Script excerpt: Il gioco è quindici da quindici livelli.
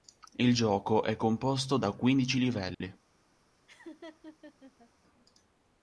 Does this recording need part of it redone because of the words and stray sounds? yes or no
yes